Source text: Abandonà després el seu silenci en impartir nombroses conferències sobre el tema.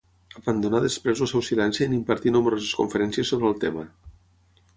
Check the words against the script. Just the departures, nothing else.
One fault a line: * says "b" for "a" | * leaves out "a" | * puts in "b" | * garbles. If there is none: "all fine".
all fine